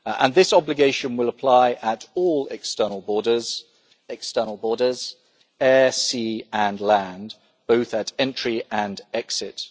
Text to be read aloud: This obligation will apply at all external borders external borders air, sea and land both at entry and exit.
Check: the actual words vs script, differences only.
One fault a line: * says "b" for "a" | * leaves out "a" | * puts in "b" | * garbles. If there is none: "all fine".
all fine